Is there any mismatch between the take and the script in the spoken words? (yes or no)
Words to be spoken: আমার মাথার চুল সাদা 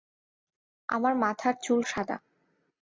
no